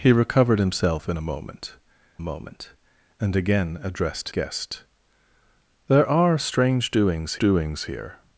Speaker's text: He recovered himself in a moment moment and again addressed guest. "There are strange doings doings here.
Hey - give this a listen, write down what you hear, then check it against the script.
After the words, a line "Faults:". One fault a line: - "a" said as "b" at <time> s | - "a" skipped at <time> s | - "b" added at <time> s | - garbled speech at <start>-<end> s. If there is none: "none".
He recovered himself in a moment moment and again addressed guest. "There are strange doings doings here.
Faults:
none